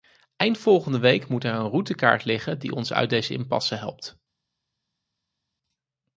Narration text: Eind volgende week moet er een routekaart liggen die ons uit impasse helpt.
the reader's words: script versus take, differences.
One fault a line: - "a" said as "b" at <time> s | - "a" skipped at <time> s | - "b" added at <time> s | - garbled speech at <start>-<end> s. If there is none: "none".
- "deze" added at 3.1 s